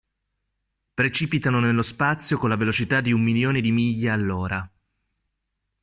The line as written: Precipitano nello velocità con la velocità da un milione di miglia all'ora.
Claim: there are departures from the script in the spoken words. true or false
true